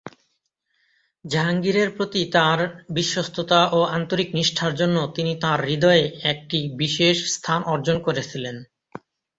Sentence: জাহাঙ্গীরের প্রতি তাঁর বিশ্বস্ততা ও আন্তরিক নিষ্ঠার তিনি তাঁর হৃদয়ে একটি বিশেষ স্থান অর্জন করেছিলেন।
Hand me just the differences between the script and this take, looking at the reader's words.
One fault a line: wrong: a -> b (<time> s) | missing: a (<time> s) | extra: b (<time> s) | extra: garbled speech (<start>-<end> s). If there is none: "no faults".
extra: জন্য (4.8 s)